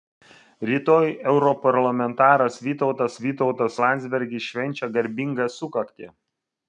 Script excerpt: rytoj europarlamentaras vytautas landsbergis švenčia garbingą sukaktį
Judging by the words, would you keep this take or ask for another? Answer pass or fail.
fail